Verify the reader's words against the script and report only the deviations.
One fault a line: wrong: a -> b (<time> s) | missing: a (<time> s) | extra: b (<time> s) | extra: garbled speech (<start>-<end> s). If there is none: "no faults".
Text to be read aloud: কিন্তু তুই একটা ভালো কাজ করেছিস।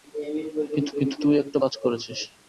extra: কিন্তু (1.0 s)
missing: ভালো (1.6 s)